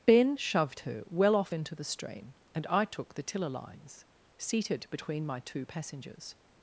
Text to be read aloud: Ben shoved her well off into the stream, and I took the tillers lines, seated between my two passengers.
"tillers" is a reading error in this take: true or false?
true